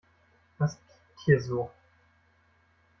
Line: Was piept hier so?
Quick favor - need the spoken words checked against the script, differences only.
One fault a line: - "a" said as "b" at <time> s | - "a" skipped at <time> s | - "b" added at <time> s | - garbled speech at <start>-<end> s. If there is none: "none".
none